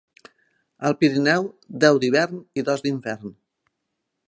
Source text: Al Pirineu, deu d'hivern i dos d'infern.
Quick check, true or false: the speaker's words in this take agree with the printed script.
true